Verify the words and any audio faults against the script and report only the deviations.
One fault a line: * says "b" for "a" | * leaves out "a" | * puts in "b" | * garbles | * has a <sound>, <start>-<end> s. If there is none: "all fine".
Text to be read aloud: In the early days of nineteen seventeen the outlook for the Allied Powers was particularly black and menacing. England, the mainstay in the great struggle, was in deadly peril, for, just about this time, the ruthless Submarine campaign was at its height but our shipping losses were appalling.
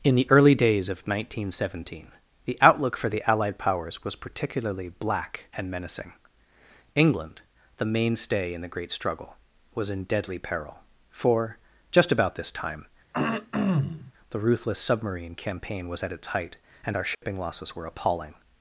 * has a throat clearing, 13.1-14.1 s
* says "and" for "but"
* has a dropout, 17.1-17.2 s